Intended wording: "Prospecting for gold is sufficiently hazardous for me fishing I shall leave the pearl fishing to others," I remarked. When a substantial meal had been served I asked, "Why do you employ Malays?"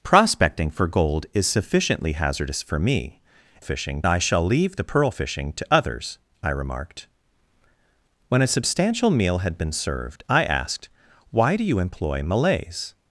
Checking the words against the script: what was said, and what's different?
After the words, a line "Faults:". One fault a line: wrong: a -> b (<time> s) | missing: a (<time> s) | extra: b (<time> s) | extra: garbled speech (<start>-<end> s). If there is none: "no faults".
"Prospecting for gold is sufficiently hazardous for me fishing I shall leave the pearl fishing to others," I remarked. When a substantial meal had been served I asked, "Why do you employ Malays?"
Faults:
no faults